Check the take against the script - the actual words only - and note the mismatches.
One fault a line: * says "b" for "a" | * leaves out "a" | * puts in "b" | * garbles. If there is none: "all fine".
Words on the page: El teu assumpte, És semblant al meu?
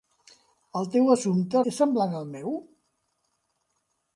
all fine